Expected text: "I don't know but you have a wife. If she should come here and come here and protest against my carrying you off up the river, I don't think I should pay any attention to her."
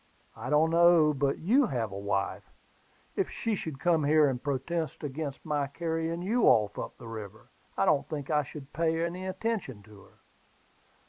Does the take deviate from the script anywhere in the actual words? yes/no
yes